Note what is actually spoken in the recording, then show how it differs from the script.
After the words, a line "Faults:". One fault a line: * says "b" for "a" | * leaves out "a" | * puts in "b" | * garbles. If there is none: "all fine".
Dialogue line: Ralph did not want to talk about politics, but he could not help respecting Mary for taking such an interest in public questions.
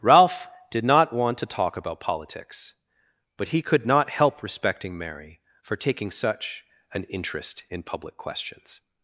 Ralph did not want to talk about politics, but he could not help respecting Mary for taking such an interest in public questions.
Faults:
all fine